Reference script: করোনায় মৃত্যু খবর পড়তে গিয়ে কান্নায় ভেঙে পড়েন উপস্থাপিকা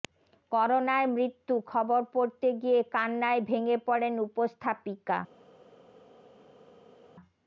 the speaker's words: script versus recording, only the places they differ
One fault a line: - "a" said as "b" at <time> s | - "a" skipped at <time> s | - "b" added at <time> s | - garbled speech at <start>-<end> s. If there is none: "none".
none